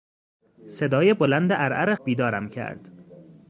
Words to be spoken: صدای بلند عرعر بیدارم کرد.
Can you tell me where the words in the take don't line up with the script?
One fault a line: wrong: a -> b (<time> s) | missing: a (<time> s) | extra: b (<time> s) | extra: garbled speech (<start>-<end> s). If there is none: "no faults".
no faults